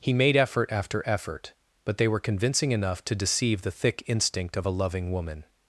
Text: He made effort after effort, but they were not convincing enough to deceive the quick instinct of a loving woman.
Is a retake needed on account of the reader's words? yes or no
yes